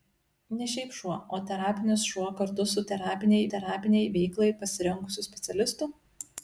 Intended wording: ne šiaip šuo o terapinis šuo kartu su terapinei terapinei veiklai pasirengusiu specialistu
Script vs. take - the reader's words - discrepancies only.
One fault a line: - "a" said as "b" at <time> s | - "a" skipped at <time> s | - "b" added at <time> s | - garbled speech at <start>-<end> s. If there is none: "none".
none